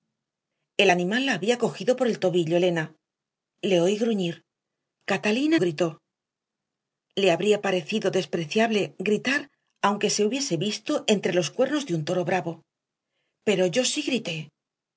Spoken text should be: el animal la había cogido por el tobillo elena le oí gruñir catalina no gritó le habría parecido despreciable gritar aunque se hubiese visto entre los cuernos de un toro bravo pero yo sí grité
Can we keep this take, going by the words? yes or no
no